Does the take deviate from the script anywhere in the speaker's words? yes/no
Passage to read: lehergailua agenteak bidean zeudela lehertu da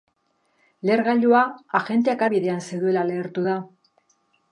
no